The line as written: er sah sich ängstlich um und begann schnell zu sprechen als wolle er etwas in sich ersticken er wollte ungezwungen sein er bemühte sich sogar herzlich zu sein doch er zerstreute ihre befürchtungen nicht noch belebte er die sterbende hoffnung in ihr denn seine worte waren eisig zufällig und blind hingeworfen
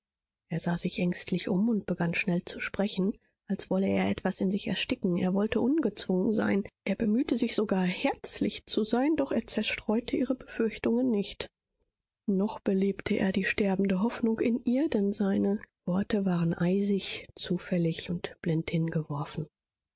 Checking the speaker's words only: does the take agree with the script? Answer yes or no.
yes